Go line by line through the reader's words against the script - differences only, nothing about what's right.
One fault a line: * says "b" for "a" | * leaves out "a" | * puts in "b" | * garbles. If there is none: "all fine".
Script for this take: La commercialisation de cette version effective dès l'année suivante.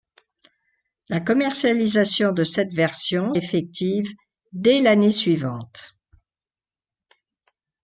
all fine